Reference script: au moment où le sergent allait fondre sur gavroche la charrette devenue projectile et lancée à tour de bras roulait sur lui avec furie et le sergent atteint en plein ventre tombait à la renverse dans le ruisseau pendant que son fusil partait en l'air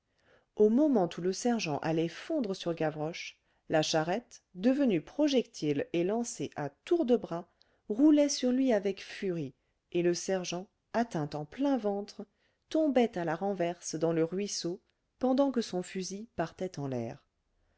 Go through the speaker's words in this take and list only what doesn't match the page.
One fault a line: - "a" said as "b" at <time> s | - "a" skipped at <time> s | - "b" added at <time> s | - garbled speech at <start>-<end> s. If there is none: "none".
none